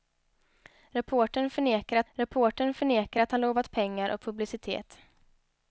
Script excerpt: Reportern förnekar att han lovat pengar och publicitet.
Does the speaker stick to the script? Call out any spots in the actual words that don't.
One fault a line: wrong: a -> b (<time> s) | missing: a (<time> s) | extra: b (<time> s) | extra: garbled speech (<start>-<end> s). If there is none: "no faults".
extra: reportern förnekar att (2.1 s)